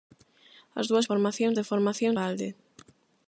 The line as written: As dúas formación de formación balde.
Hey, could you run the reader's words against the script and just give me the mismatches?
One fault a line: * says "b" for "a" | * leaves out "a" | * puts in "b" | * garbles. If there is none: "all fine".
all fine